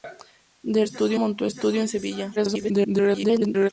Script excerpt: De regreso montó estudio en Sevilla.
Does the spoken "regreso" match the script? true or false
false